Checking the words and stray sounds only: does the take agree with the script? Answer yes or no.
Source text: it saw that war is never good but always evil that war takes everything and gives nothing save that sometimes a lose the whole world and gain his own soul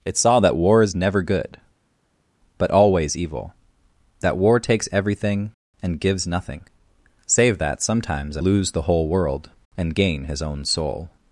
yes